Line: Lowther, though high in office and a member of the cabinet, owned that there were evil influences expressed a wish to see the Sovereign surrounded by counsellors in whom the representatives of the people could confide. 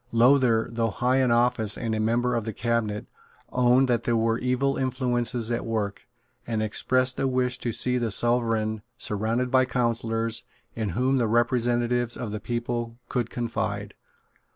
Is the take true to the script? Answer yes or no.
no